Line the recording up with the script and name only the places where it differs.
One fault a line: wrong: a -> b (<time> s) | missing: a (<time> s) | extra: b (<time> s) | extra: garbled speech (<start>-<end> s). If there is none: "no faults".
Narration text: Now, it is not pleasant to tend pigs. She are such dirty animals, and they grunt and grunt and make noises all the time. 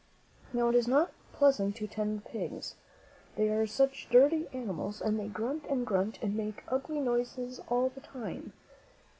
wrong: She -> They (3.3 s)
extra: ugly (6.7 s)